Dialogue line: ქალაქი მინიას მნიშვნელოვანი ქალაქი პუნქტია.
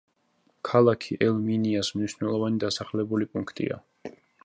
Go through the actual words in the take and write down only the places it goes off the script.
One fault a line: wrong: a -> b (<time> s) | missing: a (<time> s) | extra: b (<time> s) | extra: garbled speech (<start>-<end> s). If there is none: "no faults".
extra: ელ (1.3 s)
wrong: ქალაქი -> დასახლებული (2.7 s)